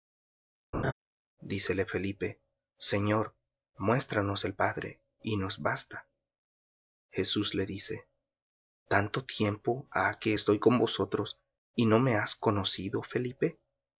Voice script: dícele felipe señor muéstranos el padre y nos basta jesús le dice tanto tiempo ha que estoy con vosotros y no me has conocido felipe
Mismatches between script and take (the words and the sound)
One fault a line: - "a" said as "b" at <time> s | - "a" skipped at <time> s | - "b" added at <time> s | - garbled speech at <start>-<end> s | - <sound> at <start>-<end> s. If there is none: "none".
- laugh at 0.7-0.9 s